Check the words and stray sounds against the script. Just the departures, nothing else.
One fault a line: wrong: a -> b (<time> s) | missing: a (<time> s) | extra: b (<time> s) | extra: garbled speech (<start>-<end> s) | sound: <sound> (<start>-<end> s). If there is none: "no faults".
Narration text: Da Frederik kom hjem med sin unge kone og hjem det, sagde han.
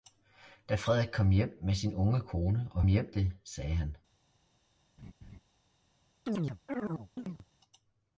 sound: laugh (5.0-5.4 s)
sound: chirp (6.3-7.5 s)